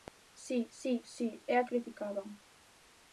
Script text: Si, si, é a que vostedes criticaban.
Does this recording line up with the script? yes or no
no